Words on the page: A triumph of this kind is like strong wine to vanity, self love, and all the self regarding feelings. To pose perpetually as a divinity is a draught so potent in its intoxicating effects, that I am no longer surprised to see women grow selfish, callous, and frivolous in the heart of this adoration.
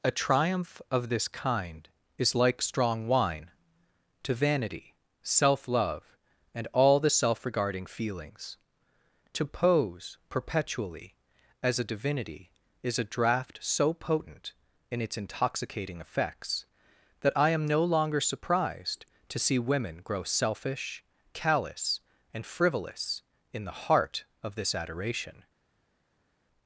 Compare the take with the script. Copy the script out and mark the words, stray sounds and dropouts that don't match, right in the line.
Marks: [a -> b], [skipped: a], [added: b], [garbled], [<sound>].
A triumph of this kind is like strong wine to vanity, self love, and all the self regarding feelings. To pose perpetually as a divinity is a draught so potent in its intoxicating effects, that I am no longer surprised to see women grow selfish, callous, and frivolous in the heart of this adoration.